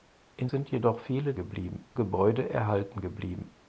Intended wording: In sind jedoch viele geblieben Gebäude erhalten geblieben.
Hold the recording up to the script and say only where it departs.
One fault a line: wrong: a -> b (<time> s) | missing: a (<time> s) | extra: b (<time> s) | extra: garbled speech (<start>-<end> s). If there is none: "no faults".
no faults